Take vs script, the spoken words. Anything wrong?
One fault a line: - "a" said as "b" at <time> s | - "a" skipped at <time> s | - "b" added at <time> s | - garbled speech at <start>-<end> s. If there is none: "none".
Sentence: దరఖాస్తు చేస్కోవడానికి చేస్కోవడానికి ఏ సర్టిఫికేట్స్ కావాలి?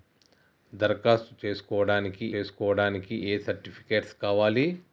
none